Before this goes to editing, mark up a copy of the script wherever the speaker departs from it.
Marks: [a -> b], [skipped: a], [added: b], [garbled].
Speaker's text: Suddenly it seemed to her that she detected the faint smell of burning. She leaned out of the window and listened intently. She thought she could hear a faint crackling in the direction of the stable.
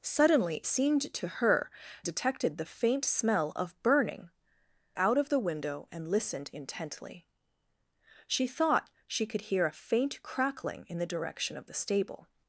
Suddenly [skipped: it] seemed to her [skipped: that she] detected the faint smell of burning. [skipped: She leaned] out of the window and listened intently. She thought she could hear a faint crackling in the direction of the stable.